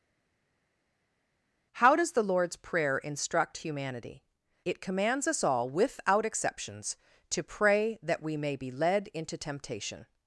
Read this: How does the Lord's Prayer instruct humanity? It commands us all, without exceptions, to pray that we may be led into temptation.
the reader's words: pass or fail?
pass